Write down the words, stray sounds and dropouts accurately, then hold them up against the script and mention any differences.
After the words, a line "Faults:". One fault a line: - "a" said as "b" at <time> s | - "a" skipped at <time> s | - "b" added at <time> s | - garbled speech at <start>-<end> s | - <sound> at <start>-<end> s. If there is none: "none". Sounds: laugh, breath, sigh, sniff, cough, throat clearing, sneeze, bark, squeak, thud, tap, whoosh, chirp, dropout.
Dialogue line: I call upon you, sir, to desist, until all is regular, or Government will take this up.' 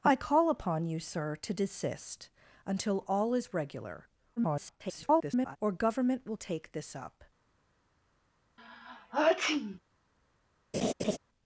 I call upon you, sir, to desist, until all is regular, [garbled] or Government will take this up.'
Faults:
- garbled speech at 4.4-5.6 s
- sneeze at 8.6-9.8 s
- laugh at 10.7-11.2 s